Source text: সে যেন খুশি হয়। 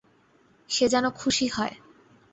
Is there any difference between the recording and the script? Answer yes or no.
no